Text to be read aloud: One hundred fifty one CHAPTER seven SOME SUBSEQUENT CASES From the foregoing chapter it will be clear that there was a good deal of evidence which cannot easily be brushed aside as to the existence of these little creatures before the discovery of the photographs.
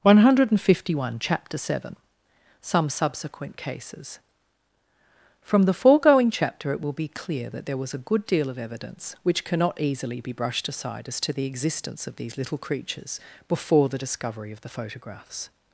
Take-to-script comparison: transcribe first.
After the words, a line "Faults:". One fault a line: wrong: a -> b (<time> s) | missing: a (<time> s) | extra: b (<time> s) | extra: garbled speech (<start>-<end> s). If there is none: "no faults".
One hundred fifty one CHAPTER seven SOME SUBSEQUENT CASES From the foregoing chapter it will be clear that there was a good deal of evidence which cannot easily be brushed aside as to the existence of these little creatures before the discovery of the photographs.
Faults:
no faults